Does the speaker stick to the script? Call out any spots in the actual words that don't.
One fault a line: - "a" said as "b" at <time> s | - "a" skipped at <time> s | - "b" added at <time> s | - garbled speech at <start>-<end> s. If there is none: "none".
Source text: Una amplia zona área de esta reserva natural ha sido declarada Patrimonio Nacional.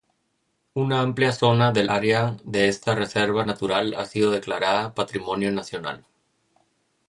- "del" added at 1.7 s